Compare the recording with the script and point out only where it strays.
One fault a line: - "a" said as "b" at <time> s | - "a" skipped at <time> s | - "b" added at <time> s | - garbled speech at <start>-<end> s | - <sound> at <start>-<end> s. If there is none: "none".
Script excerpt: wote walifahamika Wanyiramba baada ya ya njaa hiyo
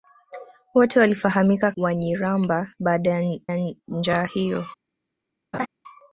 - laugh at 5.5-5.7 s